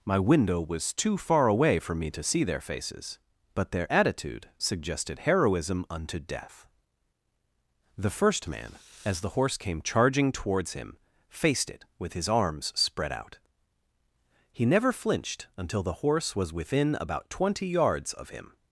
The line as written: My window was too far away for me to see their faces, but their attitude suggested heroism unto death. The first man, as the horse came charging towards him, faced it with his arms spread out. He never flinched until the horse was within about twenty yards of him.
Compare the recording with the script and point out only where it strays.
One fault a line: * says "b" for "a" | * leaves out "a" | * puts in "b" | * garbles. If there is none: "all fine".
all fine